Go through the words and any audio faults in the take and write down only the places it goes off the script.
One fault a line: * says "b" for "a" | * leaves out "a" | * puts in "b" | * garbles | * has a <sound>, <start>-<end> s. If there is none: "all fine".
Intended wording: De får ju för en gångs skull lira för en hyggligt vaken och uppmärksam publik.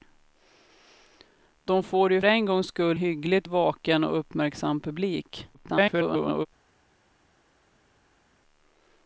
* leaves out "för"
* leaves out "lira för en"
* garbles